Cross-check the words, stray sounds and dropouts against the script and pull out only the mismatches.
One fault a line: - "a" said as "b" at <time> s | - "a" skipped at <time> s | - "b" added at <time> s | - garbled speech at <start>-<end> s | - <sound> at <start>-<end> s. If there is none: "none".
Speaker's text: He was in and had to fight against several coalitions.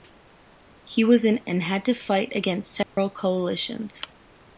- dropout at 2.8-3.0 s